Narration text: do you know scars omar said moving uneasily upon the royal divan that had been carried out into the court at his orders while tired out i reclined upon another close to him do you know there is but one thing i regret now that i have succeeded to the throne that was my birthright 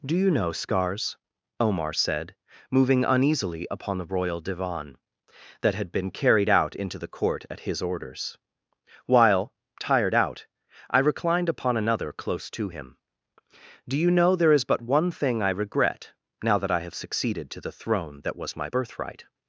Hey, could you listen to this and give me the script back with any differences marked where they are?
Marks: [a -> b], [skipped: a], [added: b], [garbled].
do you know scars omar said moving uneasily upon the royal divan that had been carried out into the court at his orders while tired out i reclined upon another close to him do you know there is but one thing i regret now that i have succeeded to the throne that was my birthright